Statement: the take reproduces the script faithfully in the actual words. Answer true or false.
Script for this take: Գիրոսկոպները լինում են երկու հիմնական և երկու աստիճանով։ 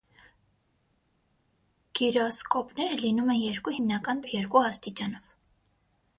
true